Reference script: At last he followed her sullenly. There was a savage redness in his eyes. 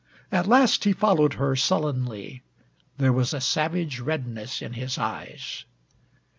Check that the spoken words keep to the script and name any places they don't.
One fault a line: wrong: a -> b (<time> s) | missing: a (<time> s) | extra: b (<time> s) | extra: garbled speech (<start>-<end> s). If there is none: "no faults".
no faults